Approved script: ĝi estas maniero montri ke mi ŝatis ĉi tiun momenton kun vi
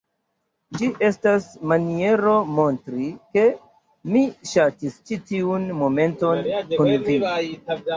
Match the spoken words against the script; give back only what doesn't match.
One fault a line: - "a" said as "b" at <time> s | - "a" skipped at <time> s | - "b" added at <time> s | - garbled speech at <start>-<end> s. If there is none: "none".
none